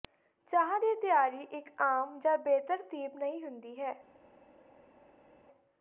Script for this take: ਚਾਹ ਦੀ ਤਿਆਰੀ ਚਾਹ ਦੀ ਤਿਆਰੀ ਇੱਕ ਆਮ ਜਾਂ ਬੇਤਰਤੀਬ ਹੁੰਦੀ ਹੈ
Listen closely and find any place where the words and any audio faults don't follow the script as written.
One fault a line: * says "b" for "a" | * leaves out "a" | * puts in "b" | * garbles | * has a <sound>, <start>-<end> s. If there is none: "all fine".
* leaves out "ਚਾਹ ਦੀ ਤਿਆਰੀ"
* puts in "ਨਹੀਂ"